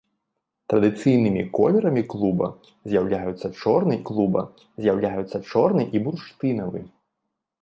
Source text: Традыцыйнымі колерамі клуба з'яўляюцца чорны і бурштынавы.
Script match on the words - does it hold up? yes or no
no